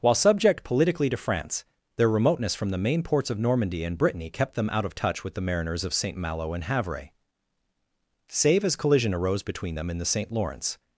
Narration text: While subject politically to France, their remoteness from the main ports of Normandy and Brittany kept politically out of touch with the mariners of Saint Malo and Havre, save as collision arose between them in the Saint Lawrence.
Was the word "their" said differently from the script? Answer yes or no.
no